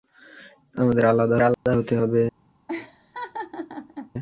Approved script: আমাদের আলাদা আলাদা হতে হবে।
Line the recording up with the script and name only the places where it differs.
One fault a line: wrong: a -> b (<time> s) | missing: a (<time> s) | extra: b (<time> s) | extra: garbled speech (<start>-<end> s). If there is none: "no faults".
no faults